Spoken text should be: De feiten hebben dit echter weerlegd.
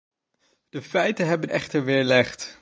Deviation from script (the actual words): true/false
true